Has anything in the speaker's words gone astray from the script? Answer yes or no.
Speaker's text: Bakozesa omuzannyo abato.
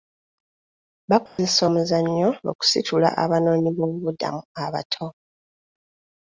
yes